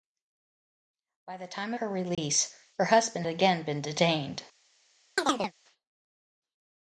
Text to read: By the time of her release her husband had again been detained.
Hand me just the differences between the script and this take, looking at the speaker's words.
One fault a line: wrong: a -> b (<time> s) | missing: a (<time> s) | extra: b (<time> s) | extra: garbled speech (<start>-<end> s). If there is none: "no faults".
missing: of (1.7 s)
missing: had (3.3 s)